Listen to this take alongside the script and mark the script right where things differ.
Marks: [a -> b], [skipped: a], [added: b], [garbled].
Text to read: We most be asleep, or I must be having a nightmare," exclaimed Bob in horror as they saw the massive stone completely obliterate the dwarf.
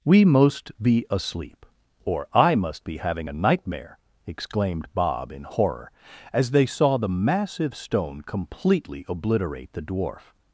We most be asleep, or I must be having a nightmare," exclaimed Bob in horror as they saw the massive stone completely obliterate the dwarf.